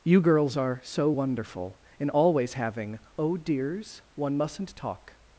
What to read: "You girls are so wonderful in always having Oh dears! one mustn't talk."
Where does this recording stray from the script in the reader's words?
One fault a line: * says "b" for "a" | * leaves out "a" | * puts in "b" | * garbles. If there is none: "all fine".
all fine